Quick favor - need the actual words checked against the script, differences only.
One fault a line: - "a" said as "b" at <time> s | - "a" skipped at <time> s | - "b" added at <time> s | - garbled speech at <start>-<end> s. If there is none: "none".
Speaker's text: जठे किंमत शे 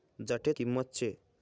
none